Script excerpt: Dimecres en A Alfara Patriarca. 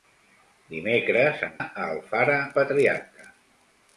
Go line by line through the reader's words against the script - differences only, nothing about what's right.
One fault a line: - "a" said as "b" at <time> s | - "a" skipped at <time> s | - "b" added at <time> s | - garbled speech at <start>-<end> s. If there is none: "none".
none